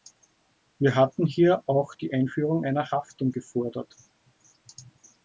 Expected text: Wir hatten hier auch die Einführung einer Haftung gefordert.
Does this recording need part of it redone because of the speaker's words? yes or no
no